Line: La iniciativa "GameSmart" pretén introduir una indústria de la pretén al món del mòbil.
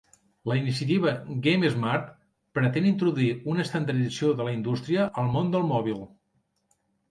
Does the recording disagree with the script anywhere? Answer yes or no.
yes